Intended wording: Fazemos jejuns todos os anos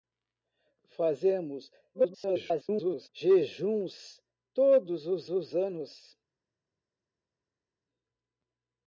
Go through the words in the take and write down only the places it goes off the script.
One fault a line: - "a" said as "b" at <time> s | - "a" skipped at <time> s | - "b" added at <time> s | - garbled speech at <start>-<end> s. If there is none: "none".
- garbled speech at 1.9-3.1 s
- "os" added at 5.3 s